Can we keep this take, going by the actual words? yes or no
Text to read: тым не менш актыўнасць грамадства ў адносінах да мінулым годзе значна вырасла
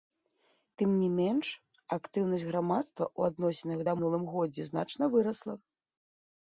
yes